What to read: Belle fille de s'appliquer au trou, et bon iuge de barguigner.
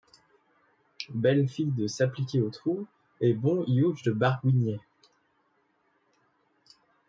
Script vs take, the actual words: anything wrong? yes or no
no